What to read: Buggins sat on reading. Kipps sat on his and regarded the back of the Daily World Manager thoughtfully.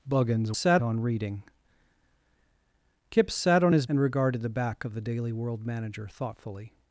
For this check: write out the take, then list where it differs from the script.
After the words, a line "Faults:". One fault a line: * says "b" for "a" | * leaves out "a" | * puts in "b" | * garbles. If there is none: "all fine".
Buggins sat on reading. Kipps sat on his and regarded the back of the Daily World Manager thoughtfully.
Faults:
all fine